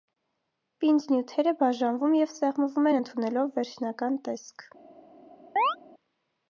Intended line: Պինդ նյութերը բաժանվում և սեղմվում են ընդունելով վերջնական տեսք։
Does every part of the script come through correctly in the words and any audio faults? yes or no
no